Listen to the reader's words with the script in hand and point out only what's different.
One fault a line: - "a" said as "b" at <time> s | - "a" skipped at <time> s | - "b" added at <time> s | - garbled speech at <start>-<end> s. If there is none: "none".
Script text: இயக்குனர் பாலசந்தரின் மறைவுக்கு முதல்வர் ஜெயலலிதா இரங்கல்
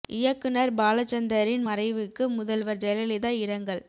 none